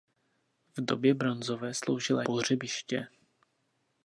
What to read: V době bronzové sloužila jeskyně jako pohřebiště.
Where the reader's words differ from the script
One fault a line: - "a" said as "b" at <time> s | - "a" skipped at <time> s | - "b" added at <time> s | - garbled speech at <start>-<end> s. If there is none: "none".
- "jeskyně jako" skipped at 2.2 s